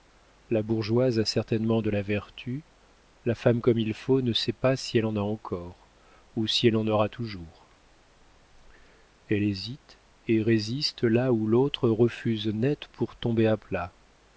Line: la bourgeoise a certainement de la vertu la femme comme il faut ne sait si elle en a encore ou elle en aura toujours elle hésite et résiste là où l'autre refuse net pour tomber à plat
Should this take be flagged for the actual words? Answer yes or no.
yes